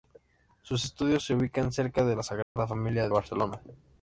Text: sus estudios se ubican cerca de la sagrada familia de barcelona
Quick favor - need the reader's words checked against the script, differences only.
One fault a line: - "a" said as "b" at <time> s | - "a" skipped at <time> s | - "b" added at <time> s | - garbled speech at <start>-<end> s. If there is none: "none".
- "de" skipped at 3.1 s